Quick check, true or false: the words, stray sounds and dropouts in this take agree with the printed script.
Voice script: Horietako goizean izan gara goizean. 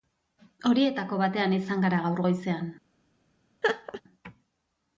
false